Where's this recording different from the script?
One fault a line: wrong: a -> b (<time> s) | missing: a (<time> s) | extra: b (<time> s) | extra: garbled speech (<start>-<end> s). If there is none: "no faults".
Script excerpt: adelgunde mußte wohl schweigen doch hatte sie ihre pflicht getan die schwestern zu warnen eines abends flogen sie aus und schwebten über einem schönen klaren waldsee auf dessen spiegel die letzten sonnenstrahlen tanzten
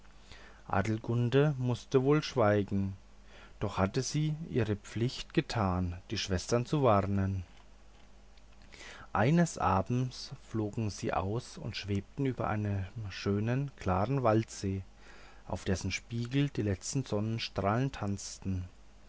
no faults